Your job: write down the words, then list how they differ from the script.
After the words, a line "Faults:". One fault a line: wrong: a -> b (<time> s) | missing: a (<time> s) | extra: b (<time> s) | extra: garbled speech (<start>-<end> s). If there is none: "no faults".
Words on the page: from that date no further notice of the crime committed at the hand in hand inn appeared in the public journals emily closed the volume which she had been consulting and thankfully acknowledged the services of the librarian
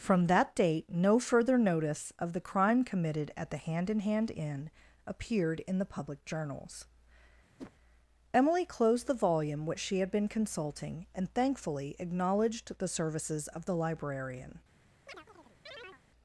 from that date no further notice of the crime committed at the hand in hand inn appeared in the public journals emily closed the volume which she had been consulting and thankfully acknowledged the services of the librarian
Faults:
no faults